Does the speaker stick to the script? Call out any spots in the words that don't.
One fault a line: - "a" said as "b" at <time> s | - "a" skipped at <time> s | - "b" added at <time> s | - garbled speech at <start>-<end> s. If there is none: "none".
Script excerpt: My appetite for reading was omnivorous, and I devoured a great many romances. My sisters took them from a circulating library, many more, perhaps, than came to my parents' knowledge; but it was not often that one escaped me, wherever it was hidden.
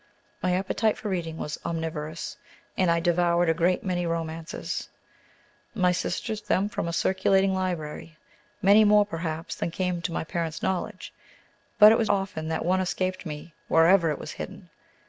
- "took" skipped at 6.4 s
- "not" skipped at 12.1 s